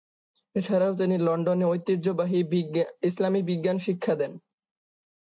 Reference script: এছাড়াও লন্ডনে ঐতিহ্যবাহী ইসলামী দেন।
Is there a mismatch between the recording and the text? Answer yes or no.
yes